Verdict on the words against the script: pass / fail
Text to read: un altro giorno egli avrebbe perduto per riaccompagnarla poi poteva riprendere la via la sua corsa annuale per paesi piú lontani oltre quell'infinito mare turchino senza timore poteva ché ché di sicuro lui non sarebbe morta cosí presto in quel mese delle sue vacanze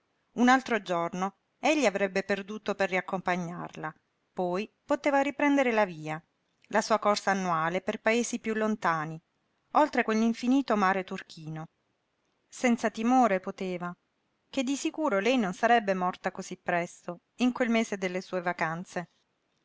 fail